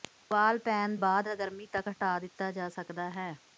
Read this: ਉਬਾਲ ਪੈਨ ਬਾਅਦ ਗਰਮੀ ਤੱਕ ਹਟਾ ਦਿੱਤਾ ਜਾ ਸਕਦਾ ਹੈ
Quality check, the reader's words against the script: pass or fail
pass